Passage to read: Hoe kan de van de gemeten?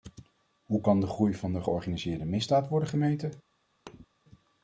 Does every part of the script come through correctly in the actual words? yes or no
no